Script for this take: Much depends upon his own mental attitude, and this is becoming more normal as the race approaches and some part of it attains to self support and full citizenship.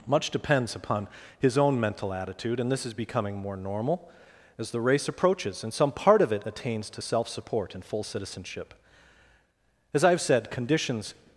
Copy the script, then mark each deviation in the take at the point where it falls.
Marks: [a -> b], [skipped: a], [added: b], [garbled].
Much depends upon his own mental attitude, and this is becoming more normal as the race approaches and some part of it attains to self support and full citizenship. [added: As I have said conditions]